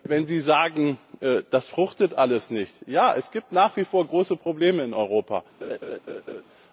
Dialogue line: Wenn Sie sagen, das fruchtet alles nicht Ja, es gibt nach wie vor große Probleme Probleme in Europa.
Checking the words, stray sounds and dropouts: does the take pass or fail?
fail